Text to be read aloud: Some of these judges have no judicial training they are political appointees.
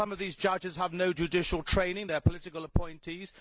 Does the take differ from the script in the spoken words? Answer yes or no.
no